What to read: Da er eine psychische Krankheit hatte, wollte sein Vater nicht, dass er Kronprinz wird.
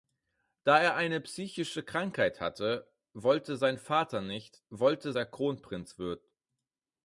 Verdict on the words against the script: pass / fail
fail